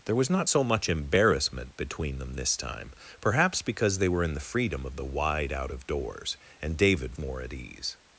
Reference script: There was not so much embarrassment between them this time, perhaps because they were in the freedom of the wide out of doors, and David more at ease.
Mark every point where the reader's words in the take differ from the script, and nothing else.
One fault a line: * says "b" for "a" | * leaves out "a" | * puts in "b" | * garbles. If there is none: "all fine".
all fine